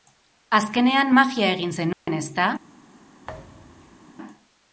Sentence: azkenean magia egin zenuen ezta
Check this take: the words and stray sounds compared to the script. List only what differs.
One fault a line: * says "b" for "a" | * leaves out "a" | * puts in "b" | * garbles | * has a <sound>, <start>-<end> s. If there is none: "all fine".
* has a dropout, 1.9-2.1 s
* has a thud, 3.2-4.1 s